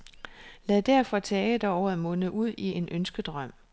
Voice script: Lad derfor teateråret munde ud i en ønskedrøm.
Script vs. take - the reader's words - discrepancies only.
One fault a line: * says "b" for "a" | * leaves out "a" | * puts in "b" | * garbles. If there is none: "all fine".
all fine